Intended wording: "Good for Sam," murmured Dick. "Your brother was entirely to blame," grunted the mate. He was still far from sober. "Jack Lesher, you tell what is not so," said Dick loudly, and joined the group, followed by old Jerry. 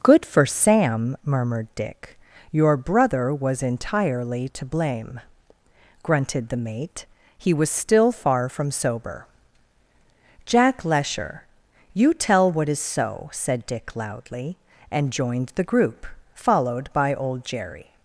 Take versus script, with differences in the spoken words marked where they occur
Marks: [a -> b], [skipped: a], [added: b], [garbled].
"Good for Sam," murmured Dick. "Your brother was entirely to blame," grunted the mate. He was still far from sober. "Jack Lesher, you tell what is [skipped: not] so," said Dick loudly, and joined the group, followed by old Jerry.